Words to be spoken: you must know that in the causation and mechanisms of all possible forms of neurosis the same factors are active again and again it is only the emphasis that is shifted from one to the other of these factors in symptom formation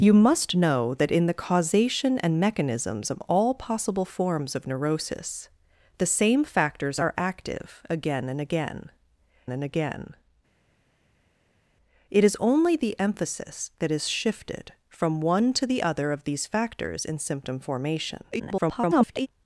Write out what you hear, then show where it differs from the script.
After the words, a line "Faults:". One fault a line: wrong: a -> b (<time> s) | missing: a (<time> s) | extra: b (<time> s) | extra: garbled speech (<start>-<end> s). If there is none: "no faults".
you must know that in the causation and mechanisms of all possible forms of neurosis the same factors are active again and again and again it is only the emphasis that is shifted from one to the other of these factors in symptom formation [garbled]
Faults:
extra: and again (9.5 s)
extra: garbled speech (18.3-19.3 s)